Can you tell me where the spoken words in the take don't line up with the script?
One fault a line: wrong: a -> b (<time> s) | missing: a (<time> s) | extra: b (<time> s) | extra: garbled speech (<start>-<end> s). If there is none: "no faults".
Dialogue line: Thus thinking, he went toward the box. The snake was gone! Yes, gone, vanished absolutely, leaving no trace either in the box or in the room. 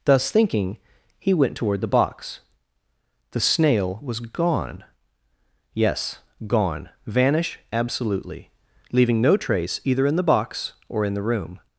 wrong: snake -> snail (3.4 s)
wrong: vanished -> vanish (7.0 s)